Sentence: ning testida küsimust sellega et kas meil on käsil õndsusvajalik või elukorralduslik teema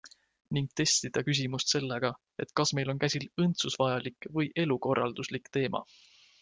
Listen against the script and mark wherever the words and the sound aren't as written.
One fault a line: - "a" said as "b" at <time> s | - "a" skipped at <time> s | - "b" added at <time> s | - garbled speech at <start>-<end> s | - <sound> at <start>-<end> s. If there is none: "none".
none